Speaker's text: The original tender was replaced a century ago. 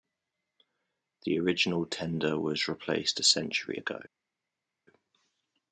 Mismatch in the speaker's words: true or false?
false